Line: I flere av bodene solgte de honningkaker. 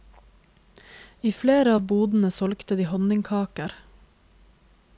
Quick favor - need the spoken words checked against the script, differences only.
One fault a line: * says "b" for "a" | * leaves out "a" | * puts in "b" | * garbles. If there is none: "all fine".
all fine